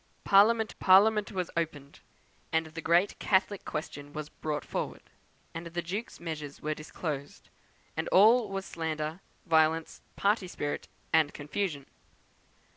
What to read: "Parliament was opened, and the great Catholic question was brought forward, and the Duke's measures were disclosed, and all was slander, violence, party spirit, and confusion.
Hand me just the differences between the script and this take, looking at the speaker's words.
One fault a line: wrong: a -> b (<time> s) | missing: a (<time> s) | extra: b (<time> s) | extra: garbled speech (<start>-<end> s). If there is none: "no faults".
extra: parliament (0.8 s)